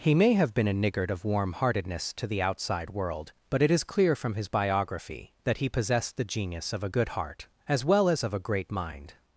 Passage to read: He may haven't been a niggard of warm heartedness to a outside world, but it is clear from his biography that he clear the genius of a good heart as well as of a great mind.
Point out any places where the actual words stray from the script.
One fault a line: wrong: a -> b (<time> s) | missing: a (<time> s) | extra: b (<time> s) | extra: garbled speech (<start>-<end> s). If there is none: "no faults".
wrong: haven't -> have (0.3 s)
wrong: a -> the (2.2 s)
wrong: clear -> possessed (5.7 s)